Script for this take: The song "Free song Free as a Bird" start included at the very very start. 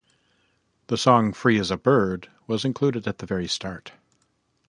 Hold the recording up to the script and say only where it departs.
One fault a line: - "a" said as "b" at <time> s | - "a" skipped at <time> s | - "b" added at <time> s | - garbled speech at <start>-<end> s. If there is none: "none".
- "song Free" skipped at 1.6 s
- "start" said as "was" at 2.5 s
- "very" skipped at 3.5 s